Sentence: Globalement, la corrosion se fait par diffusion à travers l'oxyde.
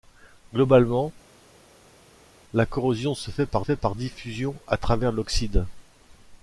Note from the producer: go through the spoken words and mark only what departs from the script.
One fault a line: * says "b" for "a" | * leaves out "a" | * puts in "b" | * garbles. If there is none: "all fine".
* puts in "fait par"